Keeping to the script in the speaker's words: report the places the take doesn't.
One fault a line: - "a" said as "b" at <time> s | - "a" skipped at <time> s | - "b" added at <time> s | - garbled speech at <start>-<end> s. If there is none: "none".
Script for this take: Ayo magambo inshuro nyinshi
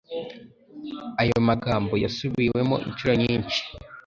- "yasubiwemo" added at 2.0 s